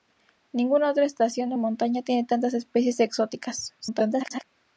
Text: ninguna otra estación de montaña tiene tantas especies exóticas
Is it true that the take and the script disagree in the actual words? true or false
true